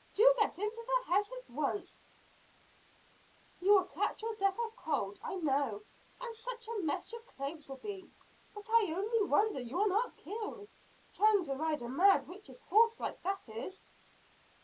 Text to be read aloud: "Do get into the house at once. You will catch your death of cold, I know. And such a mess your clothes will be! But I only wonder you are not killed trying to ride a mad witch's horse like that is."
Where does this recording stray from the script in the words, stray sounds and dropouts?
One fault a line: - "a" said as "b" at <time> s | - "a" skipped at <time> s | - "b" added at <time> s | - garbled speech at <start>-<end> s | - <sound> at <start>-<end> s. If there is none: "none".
none